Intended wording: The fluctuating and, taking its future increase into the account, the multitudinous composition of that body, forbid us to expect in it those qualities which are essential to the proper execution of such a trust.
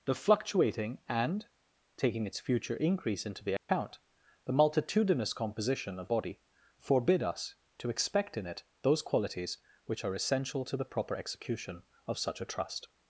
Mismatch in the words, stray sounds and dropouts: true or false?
true